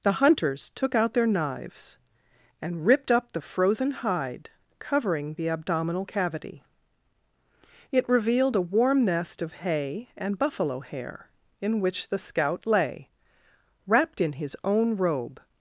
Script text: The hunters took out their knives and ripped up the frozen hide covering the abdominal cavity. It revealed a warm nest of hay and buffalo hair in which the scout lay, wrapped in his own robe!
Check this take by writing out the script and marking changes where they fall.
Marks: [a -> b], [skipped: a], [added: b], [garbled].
The hunters took out their knives and ripped up the frozen hide covering the abdominal cavity. It revealed a warm nest of hay and buffalo hair in which the scout lay, wrapped in his own robe!